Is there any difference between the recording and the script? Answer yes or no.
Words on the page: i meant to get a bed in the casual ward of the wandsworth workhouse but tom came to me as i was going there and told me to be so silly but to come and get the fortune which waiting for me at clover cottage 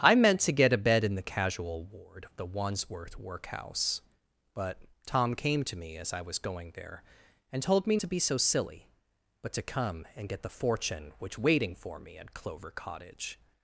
no